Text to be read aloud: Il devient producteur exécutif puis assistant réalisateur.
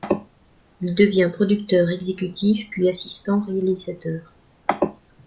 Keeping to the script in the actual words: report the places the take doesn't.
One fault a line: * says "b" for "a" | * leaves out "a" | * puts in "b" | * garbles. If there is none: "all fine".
all fine